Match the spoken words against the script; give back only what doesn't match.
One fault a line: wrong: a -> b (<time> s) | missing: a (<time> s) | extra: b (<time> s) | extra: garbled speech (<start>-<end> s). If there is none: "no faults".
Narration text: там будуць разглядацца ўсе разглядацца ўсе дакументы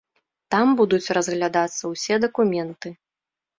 missing: разглядацца ўсе (2.2 s)